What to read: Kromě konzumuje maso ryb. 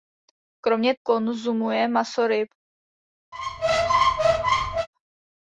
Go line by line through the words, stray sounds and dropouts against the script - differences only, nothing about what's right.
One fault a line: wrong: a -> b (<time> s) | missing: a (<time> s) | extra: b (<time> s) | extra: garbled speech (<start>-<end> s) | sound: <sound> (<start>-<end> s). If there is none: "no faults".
sound: squeak (3.3-4.9 s)